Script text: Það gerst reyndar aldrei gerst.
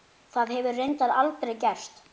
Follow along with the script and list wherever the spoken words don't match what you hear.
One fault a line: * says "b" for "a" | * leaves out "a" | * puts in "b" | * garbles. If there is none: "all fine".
* says "hefur" for "gerst"